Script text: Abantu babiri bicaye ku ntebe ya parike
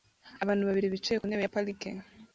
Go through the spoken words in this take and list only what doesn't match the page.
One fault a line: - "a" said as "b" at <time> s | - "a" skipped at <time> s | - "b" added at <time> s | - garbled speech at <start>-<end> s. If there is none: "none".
none